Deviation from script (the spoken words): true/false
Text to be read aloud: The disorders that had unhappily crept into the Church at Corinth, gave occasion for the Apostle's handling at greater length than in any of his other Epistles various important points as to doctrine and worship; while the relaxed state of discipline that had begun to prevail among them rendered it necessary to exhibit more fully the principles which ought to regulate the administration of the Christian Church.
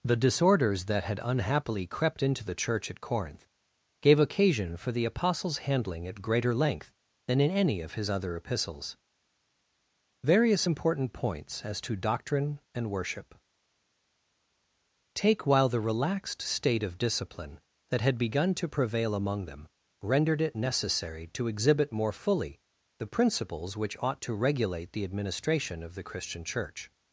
true